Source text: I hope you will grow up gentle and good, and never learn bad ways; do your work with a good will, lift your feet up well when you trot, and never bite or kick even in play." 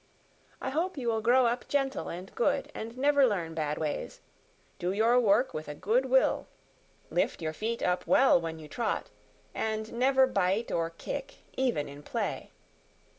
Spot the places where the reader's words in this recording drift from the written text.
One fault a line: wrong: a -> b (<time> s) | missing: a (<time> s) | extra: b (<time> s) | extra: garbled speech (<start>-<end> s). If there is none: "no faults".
no faults